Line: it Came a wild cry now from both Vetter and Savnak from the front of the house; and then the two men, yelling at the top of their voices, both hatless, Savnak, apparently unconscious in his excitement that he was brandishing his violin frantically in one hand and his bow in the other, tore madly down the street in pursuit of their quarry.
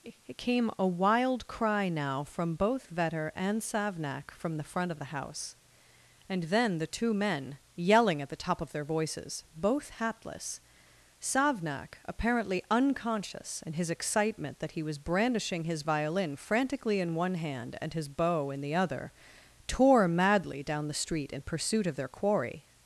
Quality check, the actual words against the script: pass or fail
pass